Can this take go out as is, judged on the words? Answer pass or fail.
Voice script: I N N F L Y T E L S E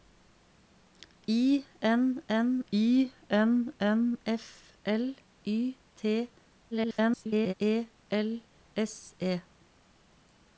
fail